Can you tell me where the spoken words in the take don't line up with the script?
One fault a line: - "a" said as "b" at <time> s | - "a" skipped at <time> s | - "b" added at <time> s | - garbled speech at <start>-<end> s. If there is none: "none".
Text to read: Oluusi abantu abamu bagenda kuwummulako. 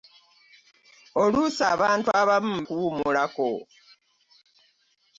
- "bagenda" skipped at 2.5 s